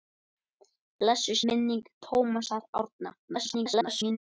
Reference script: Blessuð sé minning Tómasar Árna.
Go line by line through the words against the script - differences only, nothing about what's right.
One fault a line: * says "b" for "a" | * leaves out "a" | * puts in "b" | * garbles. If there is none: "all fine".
* leaves out "sé"
* garbles